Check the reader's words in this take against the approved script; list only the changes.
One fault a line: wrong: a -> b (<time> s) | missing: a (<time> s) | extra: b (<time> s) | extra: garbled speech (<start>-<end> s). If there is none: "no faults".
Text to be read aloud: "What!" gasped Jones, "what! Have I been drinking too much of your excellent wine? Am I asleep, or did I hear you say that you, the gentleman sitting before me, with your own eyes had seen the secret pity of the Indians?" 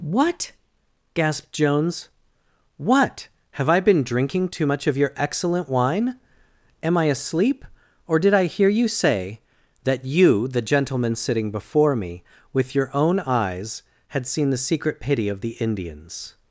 no faults